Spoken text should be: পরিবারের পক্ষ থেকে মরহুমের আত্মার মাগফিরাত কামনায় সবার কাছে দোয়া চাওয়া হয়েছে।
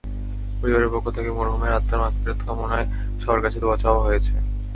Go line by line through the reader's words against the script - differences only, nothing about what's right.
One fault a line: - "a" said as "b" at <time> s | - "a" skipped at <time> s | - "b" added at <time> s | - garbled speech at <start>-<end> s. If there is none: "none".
none